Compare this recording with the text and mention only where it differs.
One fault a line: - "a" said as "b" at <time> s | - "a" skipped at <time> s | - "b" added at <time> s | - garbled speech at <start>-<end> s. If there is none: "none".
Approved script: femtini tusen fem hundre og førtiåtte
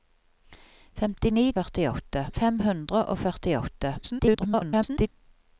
- "tusen" said as "førtiåtte" at 1.6 s
- garbled speech at 4.0-5.1 s